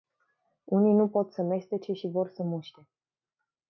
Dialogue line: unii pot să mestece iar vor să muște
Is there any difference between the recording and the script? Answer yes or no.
yes